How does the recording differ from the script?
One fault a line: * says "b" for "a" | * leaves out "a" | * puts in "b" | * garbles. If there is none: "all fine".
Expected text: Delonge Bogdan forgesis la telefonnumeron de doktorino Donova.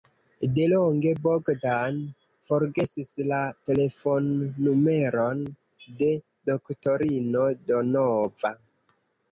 all fine